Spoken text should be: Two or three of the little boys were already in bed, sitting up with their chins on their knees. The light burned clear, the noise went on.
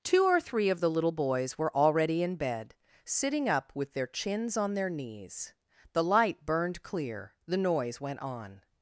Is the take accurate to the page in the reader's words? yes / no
yes